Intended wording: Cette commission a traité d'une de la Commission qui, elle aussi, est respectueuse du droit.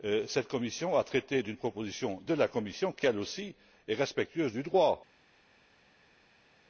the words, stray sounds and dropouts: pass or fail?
fail